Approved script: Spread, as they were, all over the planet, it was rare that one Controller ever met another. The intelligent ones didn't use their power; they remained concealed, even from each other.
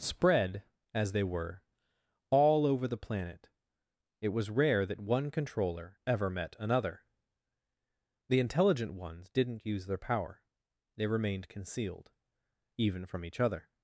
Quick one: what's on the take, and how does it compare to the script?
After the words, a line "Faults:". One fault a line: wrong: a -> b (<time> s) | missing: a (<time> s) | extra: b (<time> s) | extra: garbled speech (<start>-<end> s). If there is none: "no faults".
Spread, as they were, all over the planet, it was rare that one Controller ever met another. The intelligent ones didn't use their power; they remained concealed, even from each other.
Faults:
no faults